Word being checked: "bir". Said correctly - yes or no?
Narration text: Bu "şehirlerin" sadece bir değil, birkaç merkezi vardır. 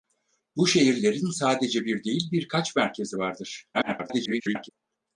yes